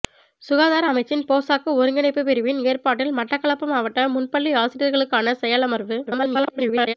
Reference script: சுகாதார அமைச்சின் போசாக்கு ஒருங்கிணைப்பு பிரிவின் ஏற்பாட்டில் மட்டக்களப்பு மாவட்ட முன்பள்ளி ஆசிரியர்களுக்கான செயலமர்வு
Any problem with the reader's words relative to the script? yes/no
yes